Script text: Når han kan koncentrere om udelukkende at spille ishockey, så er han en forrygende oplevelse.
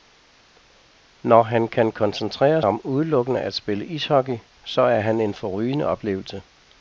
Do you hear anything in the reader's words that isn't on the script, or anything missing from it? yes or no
no